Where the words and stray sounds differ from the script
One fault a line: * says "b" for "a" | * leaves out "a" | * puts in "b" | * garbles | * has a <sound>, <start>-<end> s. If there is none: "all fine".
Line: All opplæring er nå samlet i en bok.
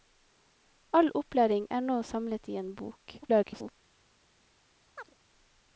* garbles
* has a chirp, 5.0-5.1 s